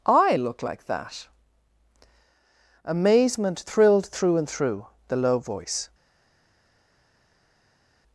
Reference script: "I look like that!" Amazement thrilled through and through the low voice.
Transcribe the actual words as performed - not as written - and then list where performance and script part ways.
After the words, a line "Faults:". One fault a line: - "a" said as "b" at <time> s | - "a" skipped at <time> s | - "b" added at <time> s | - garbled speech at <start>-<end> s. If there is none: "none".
"I look like that!" Amazement thrilled through and through the low voice.
Faults:
none